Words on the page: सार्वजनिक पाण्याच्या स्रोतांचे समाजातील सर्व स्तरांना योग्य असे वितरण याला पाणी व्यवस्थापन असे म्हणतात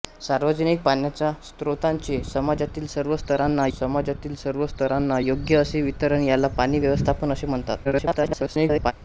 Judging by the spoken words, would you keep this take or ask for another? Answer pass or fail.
fail